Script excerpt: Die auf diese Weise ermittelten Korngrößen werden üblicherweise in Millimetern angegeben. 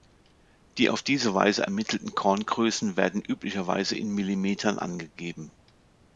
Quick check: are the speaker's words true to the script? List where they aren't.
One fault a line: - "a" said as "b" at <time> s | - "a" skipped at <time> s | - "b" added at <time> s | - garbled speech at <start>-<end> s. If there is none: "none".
none